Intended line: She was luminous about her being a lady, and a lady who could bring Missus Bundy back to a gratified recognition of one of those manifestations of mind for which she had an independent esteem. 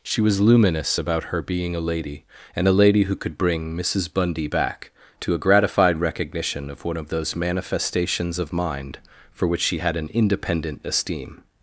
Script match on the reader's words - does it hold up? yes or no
yes